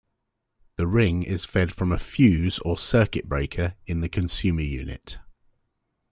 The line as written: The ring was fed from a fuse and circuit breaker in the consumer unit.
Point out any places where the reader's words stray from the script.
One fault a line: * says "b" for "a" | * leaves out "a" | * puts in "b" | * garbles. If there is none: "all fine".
* says "is" for "was"
* says "or" for "and"